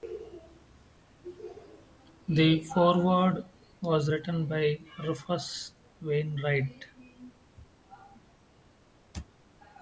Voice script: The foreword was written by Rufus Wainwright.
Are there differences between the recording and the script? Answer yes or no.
no